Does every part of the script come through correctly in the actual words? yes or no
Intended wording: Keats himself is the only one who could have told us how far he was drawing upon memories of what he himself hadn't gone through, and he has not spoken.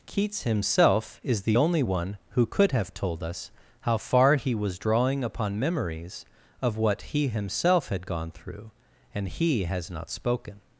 no